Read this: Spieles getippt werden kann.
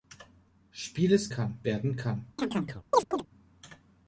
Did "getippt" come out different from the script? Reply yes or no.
yes